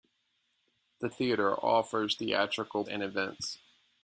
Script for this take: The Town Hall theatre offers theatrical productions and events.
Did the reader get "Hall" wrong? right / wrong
wrong